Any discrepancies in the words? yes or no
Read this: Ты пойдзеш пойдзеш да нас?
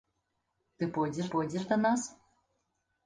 no